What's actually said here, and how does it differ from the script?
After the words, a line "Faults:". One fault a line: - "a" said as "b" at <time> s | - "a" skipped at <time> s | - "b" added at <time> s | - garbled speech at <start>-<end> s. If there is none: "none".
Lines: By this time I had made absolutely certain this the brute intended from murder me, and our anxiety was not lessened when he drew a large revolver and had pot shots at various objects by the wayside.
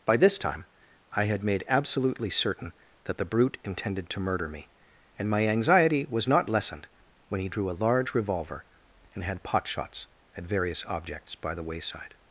By this time I had made absolutely certain that the brute intended to murder me, and my anxiety was not lessened when he drew a large revolver and had pot shots at various objects by the wayside.
Faults:
- "this" said as "that" at 3.0 s
- "from" said as "to" at 4.1 s
- "our" said as "my" at 5.3 s